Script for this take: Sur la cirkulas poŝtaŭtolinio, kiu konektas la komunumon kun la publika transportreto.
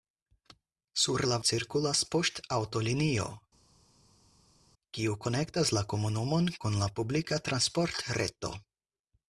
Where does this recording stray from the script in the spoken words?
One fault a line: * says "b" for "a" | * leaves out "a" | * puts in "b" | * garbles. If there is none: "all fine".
all fine